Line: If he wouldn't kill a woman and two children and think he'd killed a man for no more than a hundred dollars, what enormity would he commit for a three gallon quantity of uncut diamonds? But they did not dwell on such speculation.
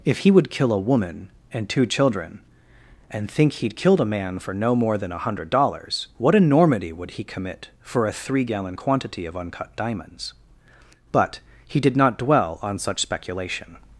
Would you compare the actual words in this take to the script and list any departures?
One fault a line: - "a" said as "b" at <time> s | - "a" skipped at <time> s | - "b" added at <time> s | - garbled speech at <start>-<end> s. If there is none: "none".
- "wouldn't" said as "would" at 0.3 s
- "they" said as "he" at 11.7 s